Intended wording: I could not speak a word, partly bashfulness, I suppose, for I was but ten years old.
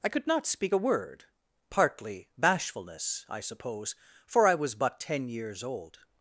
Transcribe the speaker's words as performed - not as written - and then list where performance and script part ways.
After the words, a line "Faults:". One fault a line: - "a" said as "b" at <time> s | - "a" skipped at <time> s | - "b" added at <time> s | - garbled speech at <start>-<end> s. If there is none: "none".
I could not speak a word, partly bashfulness, I suppose, for I was but ten years old.
Faults:
none